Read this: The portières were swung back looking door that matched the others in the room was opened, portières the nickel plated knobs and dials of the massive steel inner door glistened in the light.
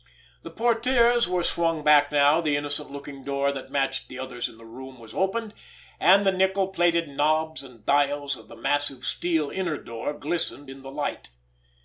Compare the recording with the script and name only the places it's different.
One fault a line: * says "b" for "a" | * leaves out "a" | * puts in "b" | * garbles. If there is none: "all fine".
* puts in "now the innocent"
* says "and" for "portières"